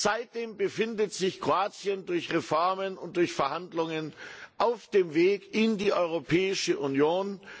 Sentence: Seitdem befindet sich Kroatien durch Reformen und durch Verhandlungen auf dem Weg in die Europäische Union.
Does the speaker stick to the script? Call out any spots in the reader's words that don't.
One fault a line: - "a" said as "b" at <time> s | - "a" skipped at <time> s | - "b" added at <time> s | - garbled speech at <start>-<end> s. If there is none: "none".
none